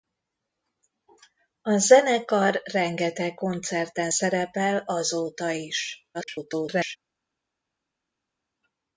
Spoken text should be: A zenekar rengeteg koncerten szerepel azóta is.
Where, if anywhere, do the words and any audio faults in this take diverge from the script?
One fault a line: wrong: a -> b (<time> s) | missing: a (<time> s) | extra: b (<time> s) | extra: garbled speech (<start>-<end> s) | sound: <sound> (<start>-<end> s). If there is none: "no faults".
extra: garbled speech (6.1-7.0 s)